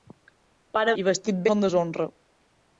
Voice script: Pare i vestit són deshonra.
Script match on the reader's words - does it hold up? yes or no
yes